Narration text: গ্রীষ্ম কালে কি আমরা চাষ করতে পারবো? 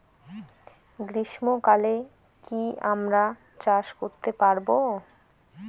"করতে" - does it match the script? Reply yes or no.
yes